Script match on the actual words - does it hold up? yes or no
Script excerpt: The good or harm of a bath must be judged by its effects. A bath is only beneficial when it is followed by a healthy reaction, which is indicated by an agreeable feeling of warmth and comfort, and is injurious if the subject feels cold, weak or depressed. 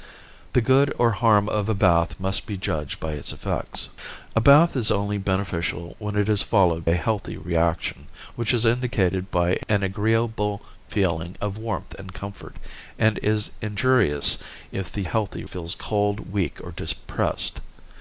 no